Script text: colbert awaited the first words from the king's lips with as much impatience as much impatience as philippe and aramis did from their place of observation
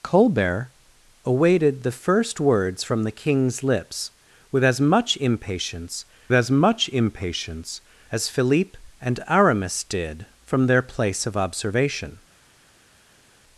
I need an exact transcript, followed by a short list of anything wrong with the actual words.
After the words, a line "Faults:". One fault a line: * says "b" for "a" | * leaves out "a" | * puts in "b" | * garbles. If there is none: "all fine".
colbert awaited the first words from the king's lips with as much impatience as much impatience as philippe and aramis did from their place of observation
Faults:
all fine